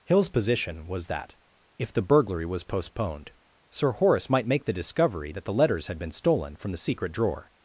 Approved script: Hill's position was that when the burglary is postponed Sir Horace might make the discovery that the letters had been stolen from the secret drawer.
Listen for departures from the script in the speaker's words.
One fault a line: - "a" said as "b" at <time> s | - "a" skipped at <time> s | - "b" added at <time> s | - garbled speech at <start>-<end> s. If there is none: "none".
- "when" said as "if" at 1.8 s
- "is" said as "was" at 2.5 s